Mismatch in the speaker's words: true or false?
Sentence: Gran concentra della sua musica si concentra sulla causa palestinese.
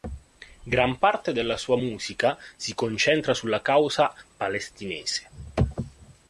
true